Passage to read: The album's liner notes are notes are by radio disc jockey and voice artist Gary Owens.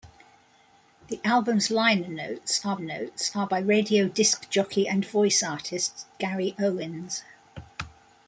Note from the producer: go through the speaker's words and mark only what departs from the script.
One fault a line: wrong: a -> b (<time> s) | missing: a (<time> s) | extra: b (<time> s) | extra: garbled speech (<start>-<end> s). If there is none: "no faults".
no faults